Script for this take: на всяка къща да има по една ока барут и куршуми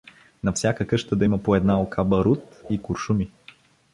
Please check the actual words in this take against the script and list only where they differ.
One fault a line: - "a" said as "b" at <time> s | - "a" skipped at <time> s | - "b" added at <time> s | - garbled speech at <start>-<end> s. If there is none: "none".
none